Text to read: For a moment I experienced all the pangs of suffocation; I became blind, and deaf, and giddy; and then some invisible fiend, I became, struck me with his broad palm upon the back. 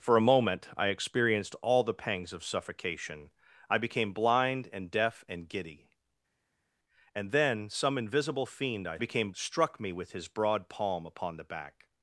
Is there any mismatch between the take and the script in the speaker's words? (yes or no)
no